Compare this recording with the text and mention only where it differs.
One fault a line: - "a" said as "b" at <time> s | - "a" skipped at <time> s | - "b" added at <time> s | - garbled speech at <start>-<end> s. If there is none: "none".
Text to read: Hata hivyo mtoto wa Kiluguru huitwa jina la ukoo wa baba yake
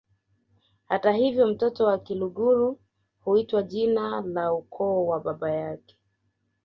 none